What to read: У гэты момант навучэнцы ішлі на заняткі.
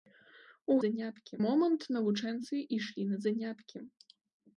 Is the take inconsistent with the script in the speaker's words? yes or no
yes